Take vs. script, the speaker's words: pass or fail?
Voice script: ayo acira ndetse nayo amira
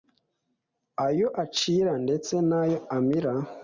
pass